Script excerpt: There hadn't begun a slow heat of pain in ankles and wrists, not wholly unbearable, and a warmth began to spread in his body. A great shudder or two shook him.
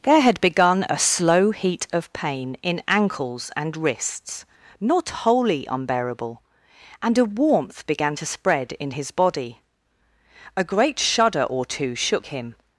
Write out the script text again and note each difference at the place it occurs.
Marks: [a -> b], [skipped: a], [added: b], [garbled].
There [hadn't -> had] begun a slow heat of pain in ankles and wrists, not wholly unbearable, and a warmth began to spread in his body. A great shudder or two shook him.